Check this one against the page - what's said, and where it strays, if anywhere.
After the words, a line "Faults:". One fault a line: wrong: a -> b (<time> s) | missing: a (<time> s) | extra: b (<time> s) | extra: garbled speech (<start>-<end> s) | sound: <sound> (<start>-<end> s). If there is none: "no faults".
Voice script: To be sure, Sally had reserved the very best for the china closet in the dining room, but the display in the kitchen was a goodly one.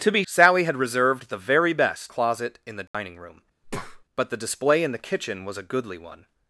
To be Sally had reserved the very best closet in the dining room, but the display in the kitchen was a goodly one.
Faults:
missing: sure (0.2 s)
missing: for the china (2.1 s)
sound: dropout (2.9-2.9 s)
sound: breath (3.6-4.0 s)